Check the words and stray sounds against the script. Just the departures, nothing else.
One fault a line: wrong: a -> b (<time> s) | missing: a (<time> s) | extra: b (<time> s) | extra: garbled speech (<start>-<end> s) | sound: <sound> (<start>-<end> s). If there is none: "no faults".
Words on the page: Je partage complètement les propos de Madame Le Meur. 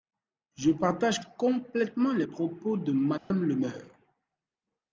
sound: dropout (3.2-3.3 s)